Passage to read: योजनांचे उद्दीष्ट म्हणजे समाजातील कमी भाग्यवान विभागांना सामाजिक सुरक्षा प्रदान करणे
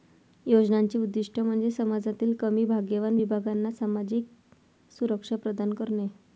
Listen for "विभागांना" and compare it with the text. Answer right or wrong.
right